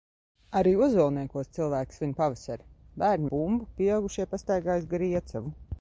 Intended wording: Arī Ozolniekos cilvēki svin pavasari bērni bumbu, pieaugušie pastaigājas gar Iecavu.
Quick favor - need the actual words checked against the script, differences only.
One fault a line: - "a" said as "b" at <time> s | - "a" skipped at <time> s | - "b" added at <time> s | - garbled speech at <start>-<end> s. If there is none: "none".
none